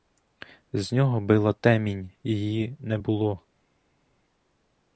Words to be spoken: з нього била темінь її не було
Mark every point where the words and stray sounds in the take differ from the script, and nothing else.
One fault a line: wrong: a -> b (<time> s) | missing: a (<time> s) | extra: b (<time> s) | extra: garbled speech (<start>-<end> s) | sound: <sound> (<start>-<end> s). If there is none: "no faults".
no faults